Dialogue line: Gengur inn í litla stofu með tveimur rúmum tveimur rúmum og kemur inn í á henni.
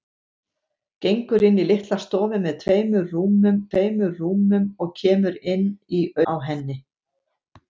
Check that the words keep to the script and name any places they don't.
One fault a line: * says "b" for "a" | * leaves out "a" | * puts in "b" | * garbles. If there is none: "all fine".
all fine